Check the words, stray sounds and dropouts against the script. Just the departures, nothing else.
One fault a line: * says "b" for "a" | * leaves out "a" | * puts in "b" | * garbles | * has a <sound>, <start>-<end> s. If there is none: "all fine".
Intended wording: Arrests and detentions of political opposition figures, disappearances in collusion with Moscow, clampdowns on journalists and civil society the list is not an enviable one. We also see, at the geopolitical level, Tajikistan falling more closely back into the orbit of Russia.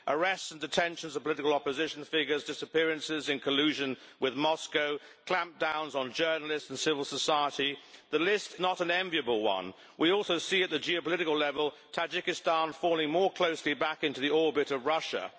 * leaves out "is"